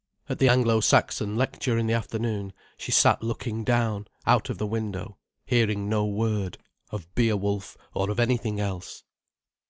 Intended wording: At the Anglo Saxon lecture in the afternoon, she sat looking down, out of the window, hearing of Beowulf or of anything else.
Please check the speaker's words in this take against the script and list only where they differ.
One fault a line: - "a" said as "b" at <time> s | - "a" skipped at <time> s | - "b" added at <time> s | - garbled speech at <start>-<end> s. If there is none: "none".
- "no word" added at 5.9 s